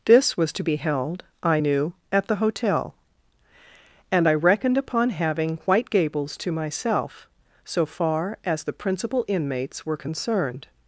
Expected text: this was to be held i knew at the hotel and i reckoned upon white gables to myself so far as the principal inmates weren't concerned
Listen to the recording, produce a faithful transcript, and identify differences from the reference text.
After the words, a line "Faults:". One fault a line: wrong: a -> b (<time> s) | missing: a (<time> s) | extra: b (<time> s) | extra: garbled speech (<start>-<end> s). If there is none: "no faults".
this was to be held i knew at the hotel and i reckoned upon having white gables to myself so far as the principal inmates were concerned
Faults:
extra: having (5.1 s)
wrong: weren't -> were (9.8 s)